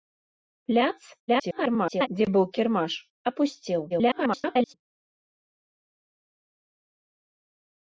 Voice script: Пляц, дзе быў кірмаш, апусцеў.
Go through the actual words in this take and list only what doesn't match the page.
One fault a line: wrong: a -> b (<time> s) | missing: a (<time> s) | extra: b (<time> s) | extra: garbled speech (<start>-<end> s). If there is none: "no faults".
extra: garbled speech (1.3-2.1 s)
extra: garbled speech (3.9-4.7 s)